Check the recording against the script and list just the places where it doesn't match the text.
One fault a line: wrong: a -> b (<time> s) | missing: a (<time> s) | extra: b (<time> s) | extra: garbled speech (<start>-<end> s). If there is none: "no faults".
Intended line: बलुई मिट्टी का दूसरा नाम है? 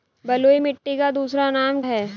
no faults